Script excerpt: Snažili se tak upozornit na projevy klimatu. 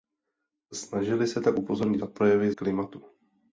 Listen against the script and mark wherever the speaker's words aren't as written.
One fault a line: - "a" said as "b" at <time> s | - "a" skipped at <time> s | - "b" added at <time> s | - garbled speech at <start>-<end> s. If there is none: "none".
none